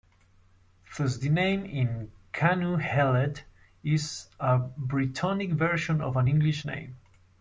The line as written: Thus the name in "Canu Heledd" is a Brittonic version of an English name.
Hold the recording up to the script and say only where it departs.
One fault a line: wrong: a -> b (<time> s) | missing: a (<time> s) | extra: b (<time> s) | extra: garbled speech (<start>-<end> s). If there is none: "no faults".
no faults